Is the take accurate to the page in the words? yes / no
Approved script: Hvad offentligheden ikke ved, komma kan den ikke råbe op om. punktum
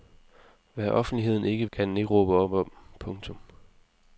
no